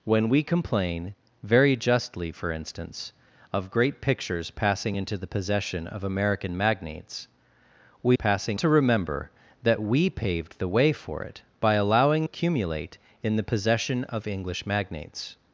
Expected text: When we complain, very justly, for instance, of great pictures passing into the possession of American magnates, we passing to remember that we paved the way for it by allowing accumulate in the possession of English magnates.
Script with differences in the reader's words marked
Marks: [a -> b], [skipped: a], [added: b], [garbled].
When we complain, very justly, for instance, of great pictures passing into the possession of American magnates, we passing to remember that we paved the way for it by allowing accumulate in the possession of English magnates.